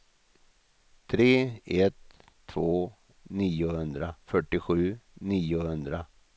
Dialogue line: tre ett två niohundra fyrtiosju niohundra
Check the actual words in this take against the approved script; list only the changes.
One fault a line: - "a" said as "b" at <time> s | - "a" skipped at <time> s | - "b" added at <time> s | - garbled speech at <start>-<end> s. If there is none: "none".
none